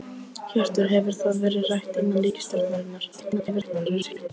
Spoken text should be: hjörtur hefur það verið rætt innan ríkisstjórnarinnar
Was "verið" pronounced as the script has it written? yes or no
yes